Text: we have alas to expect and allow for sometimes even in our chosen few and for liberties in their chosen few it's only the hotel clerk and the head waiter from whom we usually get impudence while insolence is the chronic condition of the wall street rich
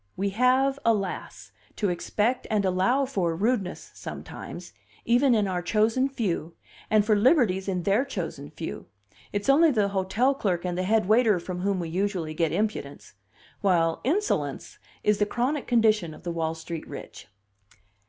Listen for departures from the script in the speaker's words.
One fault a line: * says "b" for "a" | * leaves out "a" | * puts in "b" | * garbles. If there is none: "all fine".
* puts in "rudeness"